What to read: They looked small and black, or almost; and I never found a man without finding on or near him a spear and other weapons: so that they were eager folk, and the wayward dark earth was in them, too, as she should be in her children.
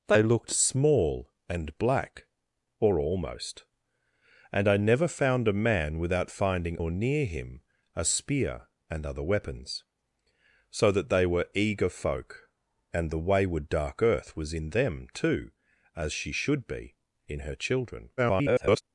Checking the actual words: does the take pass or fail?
fail